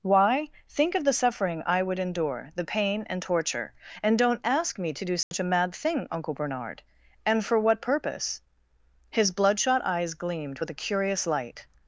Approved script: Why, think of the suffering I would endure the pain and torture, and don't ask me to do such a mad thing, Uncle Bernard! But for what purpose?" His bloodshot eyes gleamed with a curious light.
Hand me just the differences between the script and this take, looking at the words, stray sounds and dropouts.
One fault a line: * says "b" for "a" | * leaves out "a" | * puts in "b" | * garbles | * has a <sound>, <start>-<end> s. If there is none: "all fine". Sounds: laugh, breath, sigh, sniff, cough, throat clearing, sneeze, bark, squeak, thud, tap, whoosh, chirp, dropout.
* has a dropout, 5.2-5.3 s
* says "And" for "But"